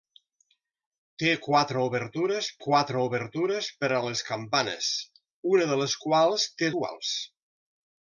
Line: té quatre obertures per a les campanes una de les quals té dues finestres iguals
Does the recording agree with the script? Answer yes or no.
no